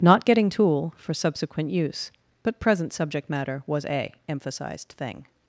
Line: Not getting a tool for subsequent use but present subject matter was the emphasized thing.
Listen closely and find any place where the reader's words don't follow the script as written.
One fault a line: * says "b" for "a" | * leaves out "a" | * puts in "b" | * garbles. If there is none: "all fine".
* leaves out "a"
* says "a" for "the"